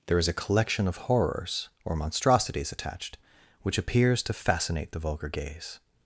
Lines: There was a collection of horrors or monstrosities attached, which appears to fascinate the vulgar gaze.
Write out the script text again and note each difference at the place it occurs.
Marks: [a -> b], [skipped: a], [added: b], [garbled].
There [was -> is] a collection of horrors or monstrosities attached, which appears to fascinate the vulgar gaze.